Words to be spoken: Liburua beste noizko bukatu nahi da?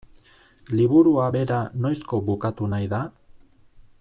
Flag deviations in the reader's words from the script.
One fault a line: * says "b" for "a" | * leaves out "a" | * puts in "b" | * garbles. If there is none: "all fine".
* says "bera" for "beste"